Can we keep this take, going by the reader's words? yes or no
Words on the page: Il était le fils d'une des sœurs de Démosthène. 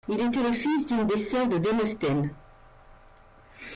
yes